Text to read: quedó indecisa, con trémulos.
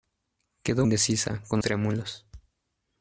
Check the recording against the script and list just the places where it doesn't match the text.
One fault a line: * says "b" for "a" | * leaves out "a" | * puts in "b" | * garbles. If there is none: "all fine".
all fine